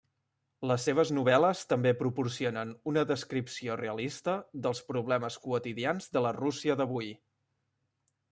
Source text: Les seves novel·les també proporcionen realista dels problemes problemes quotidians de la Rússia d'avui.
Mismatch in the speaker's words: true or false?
true